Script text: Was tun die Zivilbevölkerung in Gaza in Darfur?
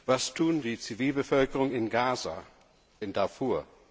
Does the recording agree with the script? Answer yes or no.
yes